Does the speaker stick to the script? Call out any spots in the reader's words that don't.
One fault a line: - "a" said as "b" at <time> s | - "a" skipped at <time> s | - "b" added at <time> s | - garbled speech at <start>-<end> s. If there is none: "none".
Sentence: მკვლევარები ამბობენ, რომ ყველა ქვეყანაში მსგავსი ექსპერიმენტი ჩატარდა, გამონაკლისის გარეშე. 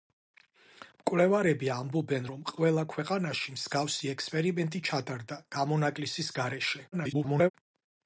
- garbled speech at 6.9-7.5 s